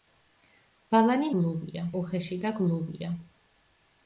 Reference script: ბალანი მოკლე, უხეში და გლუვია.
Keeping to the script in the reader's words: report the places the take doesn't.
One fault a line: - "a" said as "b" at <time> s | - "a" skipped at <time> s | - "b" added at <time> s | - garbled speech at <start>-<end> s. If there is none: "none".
- "მოკლე" said as "გლუვია" at 1.3 s